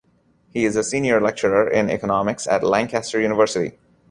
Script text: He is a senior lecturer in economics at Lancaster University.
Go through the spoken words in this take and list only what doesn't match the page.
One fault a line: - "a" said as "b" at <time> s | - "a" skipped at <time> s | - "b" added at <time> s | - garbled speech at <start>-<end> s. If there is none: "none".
none